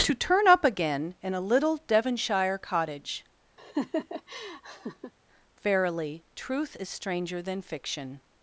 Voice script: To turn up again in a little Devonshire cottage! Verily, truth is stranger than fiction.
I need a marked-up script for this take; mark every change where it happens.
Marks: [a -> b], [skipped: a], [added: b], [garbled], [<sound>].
To turn up again in a little Devonshire cottage! [laugh] Verily, truth is stranger than fiction.